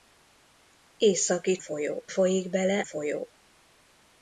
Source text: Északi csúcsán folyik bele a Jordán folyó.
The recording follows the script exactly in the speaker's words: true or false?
false